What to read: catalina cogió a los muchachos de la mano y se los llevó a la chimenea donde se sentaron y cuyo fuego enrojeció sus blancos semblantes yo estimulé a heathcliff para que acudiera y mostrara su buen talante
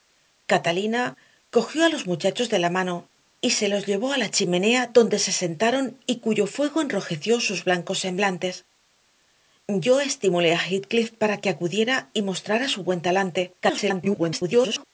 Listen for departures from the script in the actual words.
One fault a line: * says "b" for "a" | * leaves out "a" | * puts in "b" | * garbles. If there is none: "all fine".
* garbles